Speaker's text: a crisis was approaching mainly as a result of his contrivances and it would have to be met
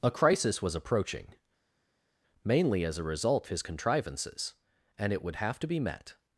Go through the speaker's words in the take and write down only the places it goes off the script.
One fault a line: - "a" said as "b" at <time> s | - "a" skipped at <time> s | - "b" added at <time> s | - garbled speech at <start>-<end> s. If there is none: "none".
- "of" skipped at 3.5 s